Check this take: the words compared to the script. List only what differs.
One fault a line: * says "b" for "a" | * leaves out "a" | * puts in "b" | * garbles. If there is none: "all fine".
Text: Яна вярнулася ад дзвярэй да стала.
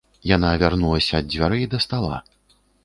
all fine